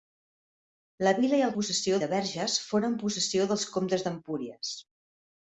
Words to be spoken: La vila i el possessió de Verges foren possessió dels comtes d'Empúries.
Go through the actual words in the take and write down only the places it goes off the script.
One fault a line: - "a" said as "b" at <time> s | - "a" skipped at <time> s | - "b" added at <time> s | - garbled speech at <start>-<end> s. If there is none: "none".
none